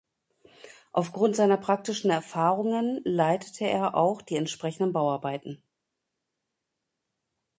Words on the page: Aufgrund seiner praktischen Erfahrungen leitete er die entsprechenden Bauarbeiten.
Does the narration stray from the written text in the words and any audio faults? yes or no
yes